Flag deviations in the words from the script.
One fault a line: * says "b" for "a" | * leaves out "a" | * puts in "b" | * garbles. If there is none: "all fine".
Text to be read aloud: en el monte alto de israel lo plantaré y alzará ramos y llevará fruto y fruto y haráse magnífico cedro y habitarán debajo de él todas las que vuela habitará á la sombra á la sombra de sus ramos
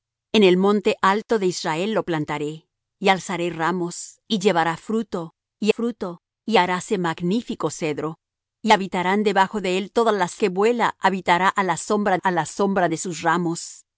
all fine